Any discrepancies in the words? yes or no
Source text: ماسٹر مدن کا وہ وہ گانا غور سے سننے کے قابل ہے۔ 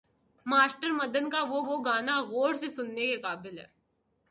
no